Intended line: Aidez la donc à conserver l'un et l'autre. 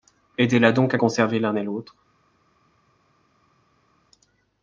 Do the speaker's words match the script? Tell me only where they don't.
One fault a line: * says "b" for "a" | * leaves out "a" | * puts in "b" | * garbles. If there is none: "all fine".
all fine